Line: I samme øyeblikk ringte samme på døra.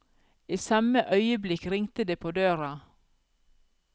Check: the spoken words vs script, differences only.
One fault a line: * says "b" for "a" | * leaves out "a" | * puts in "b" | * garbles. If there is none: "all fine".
* says "det" for "samme"